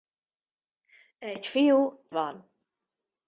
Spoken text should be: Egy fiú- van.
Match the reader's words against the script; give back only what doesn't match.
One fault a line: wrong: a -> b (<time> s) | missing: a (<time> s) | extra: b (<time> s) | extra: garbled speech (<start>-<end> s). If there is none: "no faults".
no faults